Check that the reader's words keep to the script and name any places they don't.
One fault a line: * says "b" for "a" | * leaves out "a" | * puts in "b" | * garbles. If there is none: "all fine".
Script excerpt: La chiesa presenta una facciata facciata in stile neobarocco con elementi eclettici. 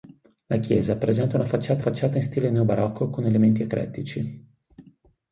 all fine